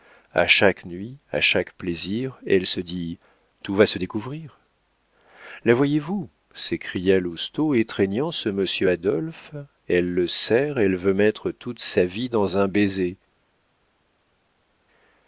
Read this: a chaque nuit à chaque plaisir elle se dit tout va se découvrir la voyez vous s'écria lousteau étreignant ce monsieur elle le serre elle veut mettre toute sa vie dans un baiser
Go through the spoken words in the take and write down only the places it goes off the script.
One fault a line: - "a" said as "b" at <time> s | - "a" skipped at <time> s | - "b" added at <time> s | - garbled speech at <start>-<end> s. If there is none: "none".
- "adolphe" added at 8.9 s